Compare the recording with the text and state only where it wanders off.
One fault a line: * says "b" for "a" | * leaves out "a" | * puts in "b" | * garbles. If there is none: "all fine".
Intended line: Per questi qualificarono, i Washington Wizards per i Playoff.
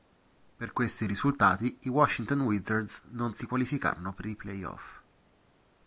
* says "risultati" for "qualificarono"
* puts in "non si qualificarono"